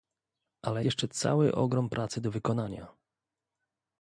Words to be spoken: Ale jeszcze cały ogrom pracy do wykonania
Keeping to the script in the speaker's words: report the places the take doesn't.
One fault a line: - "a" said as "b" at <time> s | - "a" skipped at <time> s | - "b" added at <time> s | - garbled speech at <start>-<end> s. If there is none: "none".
none